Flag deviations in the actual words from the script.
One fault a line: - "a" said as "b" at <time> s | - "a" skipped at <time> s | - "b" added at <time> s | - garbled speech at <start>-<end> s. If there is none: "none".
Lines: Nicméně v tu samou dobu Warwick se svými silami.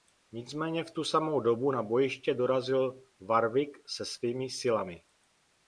- "na bojiště dorazil" added at 1.7 s